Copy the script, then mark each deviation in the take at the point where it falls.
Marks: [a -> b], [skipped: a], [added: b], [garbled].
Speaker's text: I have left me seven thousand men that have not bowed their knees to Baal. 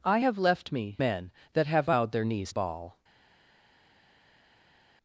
I have left me [skipped: seven thousand] men that have [skipped: not] bowed their knees [skipped: to] Baal.